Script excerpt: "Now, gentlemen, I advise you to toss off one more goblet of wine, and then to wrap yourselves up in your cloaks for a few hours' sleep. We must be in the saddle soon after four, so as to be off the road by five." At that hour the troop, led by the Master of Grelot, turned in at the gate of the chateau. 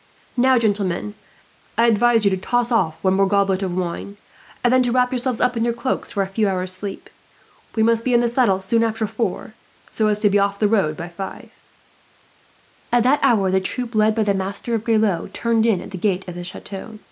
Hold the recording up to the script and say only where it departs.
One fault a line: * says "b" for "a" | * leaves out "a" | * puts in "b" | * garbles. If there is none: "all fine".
all fine